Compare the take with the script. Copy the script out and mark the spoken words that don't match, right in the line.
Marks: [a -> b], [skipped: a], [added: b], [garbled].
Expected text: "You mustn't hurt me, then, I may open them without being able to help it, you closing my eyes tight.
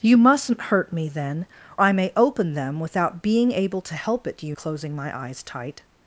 "You mustn't hurt me, then, I may open them without being able to help it, you closing my eyes tight.